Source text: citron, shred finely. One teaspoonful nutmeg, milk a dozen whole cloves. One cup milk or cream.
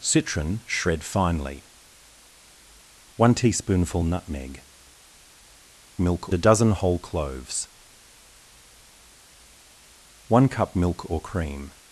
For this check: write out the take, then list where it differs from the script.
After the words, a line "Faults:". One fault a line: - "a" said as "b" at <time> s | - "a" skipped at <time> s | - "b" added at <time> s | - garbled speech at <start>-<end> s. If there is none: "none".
citron, shred finely. One teaspoonful nutmeg, milk a dozen whole cloves. One cup milk or cream.
Faults:
none